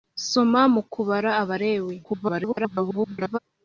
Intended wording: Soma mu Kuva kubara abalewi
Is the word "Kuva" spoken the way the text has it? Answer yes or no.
no